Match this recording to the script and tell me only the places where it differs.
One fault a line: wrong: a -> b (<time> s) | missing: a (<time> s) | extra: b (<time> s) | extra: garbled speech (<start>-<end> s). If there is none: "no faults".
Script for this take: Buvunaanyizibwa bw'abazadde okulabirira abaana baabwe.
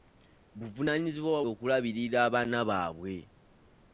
missing: bw'abazadde (1.4 s)